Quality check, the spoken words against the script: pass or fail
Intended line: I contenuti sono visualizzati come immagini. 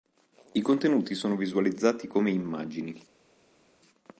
pass